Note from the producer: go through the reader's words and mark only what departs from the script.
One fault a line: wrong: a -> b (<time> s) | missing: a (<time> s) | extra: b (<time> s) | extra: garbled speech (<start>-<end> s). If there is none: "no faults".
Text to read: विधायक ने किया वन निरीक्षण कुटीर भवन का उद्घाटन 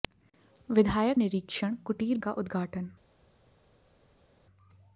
missing: ने किया वन (1.2 s)
missing: भवन (2.2 s)